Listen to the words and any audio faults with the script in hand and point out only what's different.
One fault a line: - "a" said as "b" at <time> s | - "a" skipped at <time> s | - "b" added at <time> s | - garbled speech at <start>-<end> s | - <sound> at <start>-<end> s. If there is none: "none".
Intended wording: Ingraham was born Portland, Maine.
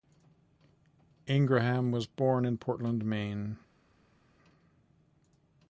- "in" added at 2.5 s